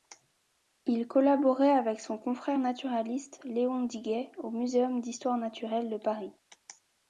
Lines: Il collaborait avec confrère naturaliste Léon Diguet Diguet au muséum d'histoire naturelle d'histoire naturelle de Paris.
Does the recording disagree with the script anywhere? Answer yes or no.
yes